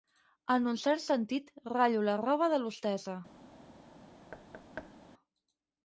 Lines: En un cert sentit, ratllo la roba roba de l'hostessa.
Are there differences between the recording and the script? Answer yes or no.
yes